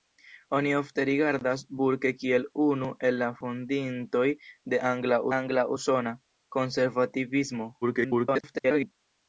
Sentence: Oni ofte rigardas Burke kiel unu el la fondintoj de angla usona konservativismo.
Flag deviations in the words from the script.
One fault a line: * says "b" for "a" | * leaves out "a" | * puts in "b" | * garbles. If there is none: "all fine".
* puts in "angla"
* garbles